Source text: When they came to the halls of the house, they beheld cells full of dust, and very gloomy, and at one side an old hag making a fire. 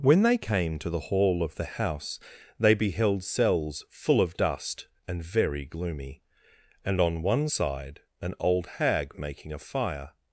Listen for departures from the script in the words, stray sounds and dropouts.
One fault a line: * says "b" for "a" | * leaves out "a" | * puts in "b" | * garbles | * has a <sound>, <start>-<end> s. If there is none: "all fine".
* says "hall" for "halls"
* says "on" for "at"